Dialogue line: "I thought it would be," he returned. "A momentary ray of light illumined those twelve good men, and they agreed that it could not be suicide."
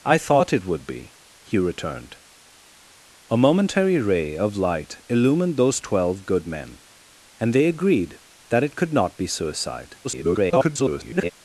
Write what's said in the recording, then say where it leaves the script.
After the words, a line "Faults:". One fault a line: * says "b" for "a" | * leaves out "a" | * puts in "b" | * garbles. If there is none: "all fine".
"I thought it would be," he returned. "A momentary ray of light illumined those twelve good men, and they agreed that it could not be suicide." [garbled]
Faults:
* garbles